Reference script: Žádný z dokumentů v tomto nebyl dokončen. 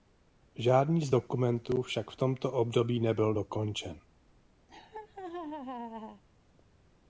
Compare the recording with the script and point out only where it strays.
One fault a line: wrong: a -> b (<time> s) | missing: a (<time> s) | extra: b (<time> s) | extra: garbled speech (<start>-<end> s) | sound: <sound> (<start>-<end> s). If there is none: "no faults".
extra: však (1.8 s)
extra: období (2.5 s)
sound: laugh (4.7-6.2 s)